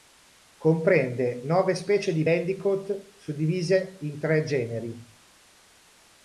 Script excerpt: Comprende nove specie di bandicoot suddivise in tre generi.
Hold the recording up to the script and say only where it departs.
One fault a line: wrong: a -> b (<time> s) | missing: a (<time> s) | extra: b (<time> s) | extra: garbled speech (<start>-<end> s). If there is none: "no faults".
no faults